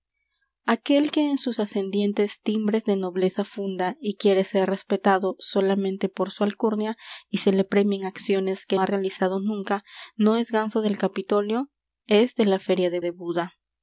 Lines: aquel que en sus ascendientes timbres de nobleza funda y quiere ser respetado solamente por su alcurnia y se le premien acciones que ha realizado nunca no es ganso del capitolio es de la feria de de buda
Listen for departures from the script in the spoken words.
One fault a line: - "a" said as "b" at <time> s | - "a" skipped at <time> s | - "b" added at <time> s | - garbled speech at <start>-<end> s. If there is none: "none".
none